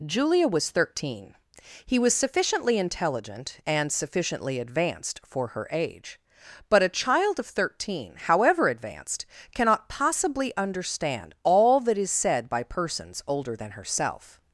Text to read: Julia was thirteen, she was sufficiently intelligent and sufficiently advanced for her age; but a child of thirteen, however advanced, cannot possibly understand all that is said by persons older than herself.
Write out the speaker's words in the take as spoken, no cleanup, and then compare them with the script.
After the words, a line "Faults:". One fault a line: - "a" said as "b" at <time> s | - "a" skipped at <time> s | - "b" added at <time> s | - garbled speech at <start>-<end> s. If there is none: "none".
Julia was thirteen, he was sufficiently intelligent and sufficiently advanced for her age; but a child of thirteen, however advanced, cannot possibly understand all that is said by persons older than herself.
Faults:
- "she" said as "he" at 1.9 s